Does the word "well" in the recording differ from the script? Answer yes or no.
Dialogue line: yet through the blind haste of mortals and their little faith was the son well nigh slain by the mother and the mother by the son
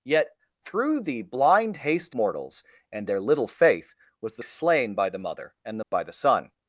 yes